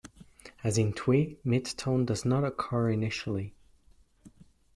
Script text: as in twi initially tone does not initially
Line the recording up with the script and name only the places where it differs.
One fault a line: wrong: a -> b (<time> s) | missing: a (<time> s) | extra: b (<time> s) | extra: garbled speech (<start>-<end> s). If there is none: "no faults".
wrong: initially -> mid (1.4 s)
extra: occur (2.5 s)